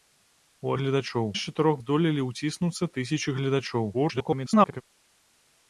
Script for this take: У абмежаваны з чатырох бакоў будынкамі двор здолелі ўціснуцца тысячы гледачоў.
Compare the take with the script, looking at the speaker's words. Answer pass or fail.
fail